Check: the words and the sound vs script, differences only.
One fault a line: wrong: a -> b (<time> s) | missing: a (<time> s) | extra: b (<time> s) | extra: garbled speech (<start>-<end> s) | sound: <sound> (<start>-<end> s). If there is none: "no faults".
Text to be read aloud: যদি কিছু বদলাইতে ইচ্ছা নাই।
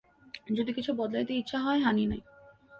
extra: হয় হানি (1.6 s)